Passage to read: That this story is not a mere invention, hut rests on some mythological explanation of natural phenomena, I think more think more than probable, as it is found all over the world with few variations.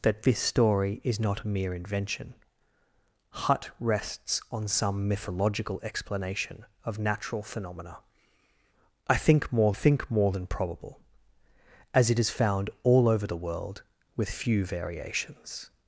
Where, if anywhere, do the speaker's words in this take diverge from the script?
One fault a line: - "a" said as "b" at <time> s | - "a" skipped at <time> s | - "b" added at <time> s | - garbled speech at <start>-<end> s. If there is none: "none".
none